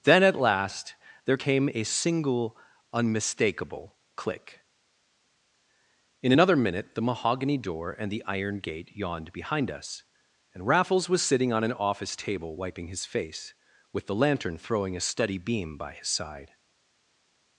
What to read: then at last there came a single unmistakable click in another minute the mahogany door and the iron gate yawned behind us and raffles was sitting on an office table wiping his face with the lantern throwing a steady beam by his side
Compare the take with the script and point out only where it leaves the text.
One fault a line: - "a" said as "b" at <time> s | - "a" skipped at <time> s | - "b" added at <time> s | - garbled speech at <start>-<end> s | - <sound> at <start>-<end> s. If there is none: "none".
none